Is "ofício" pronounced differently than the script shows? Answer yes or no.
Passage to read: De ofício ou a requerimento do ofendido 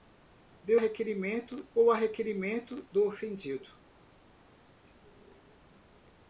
yes